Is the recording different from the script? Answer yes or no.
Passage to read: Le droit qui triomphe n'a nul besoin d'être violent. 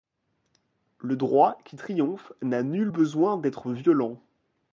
no